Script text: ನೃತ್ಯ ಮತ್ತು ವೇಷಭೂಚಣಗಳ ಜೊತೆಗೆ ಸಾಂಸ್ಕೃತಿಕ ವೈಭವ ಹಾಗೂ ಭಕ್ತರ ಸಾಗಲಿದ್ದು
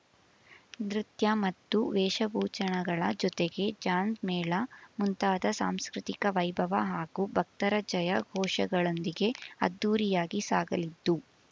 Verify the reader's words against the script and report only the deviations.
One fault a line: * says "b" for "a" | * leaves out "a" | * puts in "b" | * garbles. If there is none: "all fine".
* puts in "ಜಾಂಜ್ ಮೇಳ ಮುಂತಾದ"
* puts in "ಜಯ ಘೋಷಗಳೊಂದಿಗೆ ಅದ್ದೂರಿಯಾಗಿ"